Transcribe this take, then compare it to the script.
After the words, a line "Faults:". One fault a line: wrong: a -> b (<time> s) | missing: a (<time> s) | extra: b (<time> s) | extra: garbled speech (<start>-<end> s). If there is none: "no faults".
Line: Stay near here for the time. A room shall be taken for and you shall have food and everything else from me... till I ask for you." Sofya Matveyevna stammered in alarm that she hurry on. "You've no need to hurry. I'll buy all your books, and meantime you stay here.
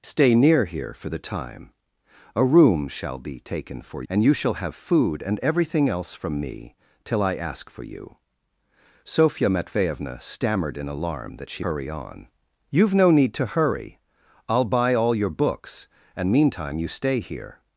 Stay near here for the time. A room shall be taken for and you shall have food and everything else from me... till I ask for you." Sofya Matveyevna stammered in alarm that she hurry on. "You've no need to hurry. I'll buy all your books, and meantime you stay here.
Faults:
no faults